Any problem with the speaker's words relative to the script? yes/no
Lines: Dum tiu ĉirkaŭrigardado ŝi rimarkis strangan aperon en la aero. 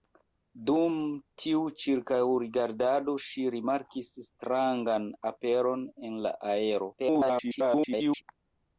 yes